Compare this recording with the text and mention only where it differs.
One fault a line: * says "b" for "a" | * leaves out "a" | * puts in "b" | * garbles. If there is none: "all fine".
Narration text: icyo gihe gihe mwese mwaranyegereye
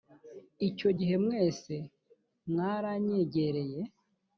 * leaves out "gihe"